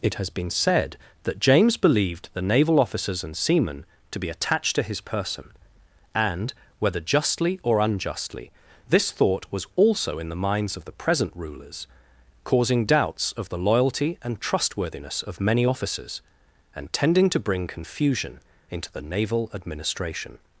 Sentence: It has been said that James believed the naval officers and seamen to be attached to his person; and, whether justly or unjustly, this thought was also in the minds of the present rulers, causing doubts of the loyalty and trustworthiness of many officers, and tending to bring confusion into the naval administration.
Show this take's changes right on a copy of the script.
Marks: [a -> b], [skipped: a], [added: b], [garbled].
It has been said that James believed the naval officers and seamen to be attached to his person; and, whether justly or unjustly, this thought was also in the minds of the present rulers, causing doubts of the loyalty and trustworthiness of many officers, and tending to bring confusion into the naval administration.